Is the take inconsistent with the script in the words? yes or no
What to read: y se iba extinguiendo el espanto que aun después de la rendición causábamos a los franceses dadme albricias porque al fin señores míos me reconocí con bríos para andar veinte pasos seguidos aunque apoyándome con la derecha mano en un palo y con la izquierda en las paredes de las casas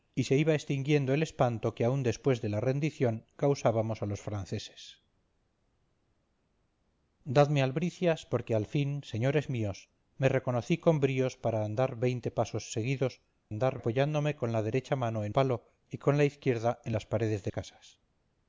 yes